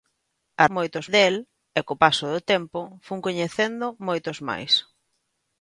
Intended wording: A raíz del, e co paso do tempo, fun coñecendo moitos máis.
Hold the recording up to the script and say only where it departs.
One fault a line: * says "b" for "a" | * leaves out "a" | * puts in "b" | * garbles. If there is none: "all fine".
* says "moitos" for "raíz"